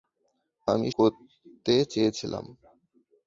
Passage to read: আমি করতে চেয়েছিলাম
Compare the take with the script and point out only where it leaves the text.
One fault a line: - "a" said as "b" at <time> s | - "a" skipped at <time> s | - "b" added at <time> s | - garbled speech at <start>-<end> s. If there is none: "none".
none